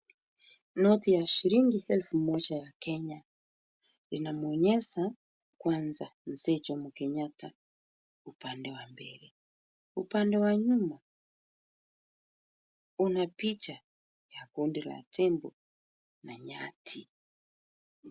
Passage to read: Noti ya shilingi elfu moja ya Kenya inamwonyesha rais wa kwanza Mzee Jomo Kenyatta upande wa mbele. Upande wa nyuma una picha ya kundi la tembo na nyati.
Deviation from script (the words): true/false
true